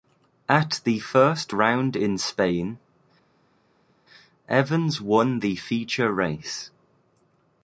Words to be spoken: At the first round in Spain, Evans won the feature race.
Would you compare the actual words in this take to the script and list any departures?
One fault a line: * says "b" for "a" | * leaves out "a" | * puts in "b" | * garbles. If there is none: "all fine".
all fine